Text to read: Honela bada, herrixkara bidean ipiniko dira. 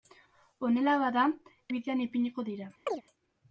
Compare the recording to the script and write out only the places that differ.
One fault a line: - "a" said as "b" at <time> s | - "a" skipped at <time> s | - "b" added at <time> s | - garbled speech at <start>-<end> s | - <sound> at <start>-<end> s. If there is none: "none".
- "herrixkara" skipped at 1.2 s
- chirp at 2.9-3.0 s